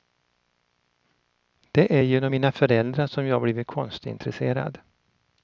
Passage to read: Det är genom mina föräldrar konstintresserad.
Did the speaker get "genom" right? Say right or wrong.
right